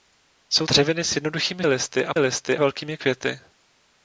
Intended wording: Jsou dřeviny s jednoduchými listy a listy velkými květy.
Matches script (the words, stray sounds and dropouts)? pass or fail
pass